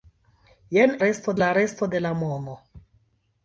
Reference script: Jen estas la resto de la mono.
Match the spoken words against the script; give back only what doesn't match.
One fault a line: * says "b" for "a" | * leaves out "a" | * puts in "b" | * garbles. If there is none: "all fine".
* says "resto" for "estas"